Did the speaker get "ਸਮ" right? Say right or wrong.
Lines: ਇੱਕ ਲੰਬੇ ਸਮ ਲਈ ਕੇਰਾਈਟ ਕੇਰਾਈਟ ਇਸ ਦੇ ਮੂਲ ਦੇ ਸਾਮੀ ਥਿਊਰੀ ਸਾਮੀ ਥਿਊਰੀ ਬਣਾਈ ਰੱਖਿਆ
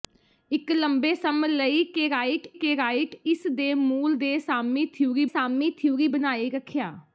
right